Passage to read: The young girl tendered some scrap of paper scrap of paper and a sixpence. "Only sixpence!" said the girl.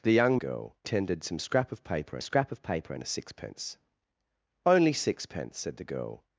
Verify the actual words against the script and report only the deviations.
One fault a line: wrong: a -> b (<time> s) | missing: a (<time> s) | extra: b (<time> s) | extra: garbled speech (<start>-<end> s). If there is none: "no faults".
no faults